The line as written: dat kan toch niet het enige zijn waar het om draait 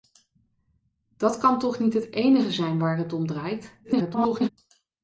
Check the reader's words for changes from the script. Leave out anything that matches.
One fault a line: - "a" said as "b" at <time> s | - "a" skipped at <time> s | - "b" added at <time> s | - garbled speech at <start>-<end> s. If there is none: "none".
- garbled speech at 3.8-4.5 s